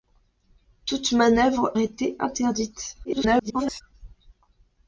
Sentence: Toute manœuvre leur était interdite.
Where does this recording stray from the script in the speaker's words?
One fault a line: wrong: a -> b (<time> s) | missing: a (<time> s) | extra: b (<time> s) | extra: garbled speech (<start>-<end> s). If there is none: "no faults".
missing: leur (1.8 s)
extra: garbled speech (3.0-3.8 s)